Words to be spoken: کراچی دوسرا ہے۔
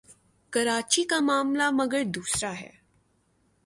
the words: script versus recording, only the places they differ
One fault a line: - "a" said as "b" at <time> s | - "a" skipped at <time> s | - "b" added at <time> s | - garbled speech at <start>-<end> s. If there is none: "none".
- "کا معاملہ مگر" added at 1.0 s